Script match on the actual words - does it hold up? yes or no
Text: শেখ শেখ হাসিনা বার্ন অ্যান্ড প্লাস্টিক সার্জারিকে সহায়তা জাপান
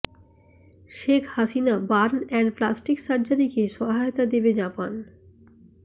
no